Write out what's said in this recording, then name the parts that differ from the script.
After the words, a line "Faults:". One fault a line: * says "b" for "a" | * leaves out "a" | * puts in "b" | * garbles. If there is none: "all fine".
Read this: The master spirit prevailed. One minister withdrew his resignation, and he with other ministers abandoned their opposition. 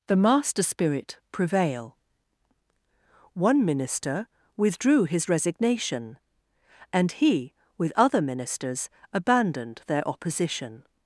The master spirit prevail. One minister withdrew his resignation, and he with other ministers abandoned their opposition.
Faults:
* says "prevail" for "prevailed"